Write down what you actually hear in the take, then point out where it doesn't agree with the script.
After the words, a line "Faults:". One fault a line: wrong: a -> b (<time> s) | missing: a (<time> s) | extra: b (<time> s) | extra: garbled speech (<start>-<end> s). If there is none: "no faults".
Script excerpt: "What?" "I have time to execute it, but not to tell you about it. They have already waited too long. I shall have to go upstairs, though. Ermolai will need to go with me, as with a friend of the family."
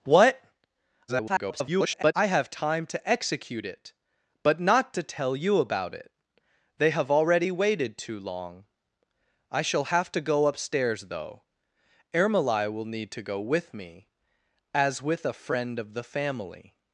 "What?" [garbled] "I have time to execute it, but not to tell you about it. They have already waited too long. I shall have to go upstairs, though. Ermolai will need to go with me, as with a friend of the family."
Faults:
extra: garbled speech (1.1-2.1 s)